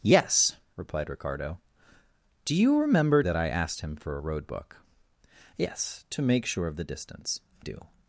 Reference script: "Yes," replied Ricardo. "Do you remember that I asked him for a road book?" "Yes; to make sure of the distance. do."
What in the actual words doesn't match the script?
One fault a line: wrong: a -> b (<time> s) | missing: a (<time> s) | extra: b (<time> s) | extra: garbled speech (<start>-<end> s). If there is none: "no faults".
no faults